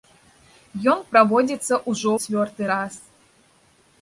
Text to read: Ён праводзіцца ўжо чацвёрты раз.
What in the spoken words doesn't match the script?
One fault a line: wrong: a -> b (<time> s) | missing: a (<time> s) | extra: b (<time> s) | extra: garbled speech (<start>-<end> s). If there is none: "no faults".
no faults